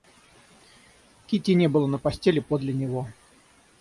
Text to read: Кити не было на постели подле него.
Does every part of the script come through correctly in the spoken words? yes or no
yes